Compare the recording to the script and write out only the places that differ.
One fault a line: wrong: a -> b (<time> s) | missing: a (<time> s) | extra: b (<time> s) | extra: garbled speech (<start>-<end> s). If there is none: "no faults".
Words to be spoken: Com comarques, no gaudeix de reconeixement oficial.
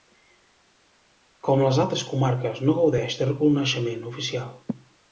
extra: les altres (1.6 s)